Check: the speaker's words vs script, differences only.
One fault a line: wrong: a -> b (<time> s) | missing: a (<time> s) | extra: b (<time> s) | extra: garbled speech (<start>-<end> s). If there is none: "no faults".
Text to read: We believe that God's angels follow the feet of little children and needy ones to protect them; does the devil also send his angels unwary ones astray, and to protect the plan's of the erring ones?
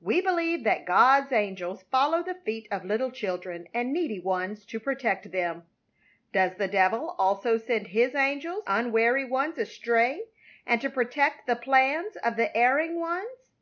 no faults